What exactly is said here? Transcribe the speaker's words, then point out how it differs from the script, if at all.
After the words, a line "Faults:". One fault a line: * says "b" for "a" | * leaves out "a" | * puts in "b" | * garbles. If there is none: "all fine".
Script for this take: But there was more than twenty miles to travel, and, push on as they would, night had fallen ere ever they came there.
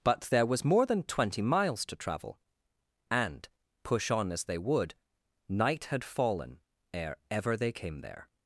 But there was more than twenty miles to travel, and, push on as they would, night had fallen ere ever they came there.
Faults:
all fine